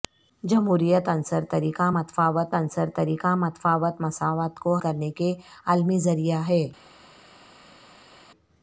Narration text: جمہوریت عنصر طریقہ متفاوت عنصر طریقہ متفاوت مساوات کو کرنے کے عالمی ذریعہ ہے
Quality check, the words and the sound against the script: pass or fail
pass